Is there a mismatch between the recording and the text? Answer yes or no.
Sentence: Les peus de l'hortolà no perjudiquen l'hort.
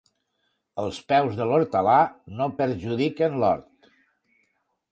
yes